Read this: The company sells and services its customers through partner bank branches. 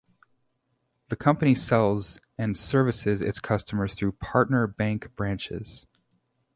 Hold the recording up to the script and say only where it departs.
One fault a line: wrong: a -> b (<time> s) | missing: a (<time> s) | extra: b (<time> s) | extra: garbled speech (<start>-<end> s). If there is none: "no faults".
no faults